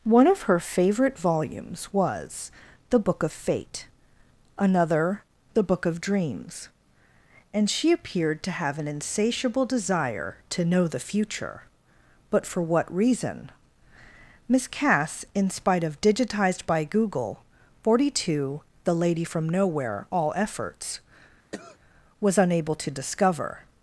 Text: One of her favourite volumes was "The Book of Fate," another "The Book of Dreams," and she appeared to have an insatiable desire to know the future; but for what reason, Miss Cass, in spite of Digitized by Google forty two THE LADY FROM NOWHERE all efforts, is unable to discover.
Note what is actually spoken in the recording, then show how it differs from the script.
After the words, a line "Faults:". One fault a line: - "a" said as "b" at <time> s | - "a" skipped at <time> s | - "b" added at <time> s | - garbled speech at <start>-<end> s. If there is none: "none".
One of her favourite volumes was "The Book of Fate," another "The Book of Dreams," and she appeared to have an insatiable desire to know the future; but for what reason, Miss Cass, in spite of Digitized by Google forty two THE LADY FROM NOWHERE all efforts, was unable to discover.
Faults:
- "is" said as "was" at 22.2 s